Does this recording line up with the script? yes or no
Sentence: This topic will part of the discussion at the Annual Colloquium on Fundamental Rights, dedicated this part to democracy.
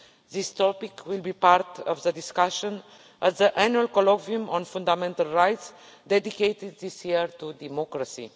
no